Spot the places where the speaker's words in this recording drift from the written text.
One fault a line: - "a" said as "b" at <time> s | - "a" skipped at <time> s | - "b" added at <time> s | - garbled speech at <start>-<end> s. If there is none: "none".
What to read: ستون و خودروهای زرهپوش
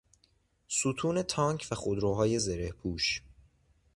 - "تانک" added at 1.2 s